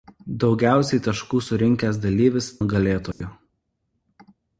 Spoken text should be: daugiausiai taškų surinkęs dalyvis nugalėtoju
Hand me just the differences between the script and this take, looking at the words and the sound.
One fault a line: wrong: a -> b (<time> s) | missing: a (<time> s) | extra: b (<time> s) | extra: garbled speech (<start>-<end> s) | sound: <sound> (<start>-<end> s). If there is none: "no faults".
sound: dropout (3.1-3.2 s)